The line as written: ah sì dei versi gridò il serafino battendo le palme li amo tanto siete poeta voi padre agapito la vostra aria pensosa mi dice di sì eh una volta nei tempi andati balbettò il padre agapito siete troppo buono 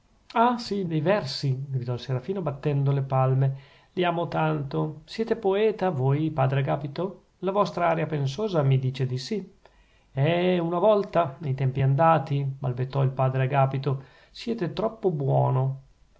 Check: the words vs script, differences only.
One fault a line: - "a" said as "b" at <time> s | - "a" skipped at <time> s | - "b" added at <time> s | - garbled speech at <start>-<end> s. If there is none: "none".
none